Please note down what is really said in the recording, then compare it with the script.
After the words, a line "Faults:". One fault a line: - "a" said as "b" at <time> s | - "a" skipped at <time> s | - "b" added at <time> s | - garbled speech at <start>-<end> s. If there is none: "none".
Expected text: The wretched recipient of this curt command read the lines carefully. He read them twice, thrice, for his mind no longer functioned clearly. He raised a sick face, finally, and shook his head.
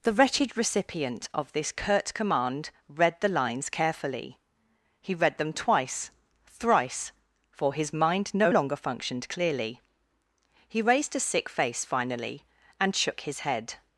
The wretched recipient of this curt command read the lines carefully. He read them twice, thrice, for his mind no longer functioned clearly. He raised a sick face, finally, and shook his head.
Faults:
none